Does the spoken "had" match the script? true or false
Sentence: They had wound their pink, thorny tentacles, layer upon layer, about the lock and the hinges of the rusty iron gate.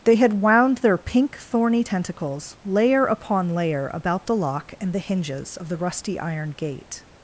true